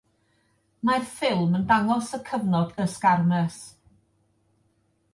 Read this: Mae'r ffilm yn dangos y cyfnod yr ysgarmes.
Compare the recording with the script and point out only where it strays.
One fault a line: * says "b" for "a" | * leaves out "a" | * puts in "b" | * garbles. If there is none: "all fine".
all fine